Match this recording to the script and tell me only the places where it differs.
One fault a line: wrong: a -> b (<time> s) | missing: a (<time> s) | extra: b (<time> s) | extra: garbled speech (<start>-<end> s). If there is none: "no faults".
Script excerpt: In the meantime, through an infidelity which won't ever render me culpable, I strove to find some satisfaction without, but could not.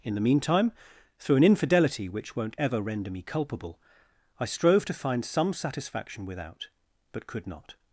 no faults